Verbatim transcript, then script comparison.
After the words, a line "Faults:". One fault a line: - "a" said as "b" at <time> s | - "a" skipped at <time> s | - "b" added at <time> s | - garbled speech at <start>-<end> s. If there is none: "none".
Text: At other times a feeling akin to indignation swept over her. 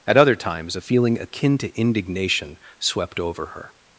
At other times a feeling akin to indignation swept over her.
Faults:
none